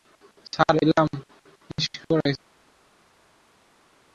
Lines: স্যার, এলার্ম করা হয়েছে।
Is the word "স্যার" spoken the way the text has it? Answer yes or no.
yes